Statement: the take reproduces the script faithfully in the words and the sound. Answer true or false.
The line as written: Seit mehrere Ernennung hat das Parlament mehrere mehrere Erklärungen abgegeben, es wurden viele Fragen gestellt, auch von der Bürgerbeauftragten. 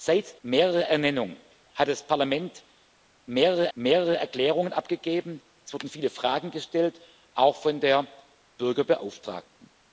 true